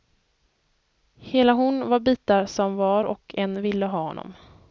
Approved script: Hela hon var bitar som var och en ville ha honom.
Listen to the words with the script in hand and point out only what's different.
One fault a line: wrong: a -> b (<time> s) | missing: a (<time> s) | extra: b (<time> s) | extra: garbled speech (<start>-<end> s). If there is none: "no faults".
no faults